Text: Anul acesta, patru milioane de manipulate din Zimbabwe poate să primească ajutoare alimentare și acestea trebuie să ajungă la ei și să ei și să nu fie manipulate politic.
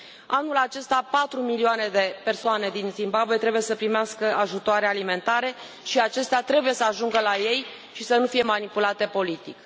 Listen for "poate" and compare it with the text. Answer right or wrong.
wrong